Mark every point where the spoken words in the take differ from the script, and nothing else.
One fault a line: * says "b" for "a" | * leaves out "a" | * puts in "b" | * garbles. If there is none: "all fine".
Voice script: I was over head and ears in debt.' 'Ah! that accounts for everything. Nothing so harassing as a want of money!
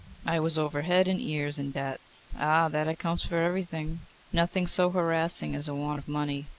all fine